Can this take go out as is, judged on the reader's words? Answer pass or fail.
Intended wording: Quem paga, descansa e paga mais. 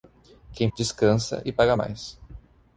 fail